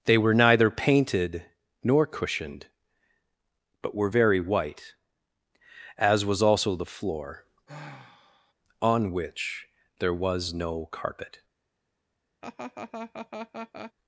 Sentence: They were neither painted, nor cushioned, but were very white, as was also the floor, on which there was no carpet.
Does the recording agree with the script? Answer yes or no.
yes